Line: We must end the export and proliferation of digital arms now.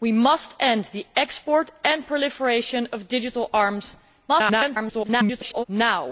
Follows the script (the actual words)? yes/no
no